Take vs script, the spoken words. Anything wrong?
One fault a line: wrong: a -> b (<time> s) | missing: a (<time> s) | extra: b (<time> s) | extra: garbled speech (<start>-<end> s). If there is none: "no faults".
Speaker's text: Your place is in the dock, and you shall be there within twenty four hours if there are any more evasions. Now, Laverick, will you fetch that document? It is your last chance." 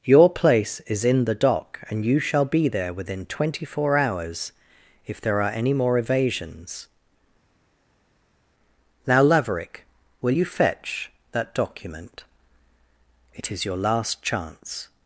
no faults